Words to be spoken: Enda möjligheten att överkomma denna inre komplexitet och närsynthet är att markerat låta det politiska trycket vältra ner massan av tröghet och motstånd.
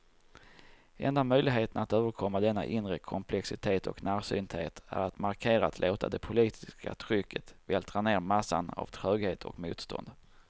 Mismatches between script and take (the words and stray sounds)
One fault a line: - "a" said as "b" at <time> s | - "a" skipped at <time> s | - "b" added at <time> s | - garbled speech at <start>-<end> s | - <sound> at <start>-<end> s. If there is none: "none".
none